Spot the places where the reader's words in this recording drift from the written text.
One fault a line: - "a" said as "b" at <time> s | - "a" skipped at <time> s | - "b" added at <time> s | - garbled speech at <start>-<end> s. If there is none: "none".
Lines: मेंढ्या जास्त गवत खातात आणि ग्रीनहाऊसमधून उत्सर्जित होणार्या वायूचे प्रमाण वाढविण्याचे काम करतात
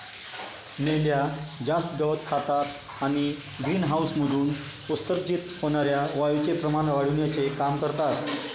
none